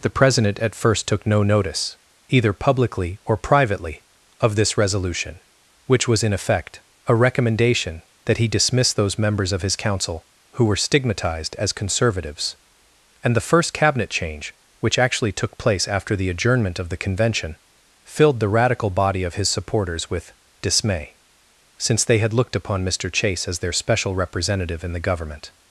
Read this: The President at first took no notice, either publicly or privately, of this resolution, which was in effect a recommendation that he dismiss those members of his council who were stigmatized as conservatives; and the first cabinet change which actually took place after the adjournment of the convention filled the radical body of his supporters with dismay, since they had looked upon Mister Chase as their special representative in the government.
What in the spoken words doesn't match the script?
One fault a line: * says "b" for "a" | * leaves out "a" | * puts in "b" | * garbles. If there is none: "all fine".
all fine